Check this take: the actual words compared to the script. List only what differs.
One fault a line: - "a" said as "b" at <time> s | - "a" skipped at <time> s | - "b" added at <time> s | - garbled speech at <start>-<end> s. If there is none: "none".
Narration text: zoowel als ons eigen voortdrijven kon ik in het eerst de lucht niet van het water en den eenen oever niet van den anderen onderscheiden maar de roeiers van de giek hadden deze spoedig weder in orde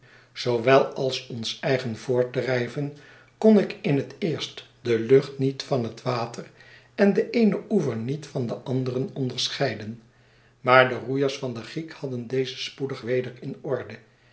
none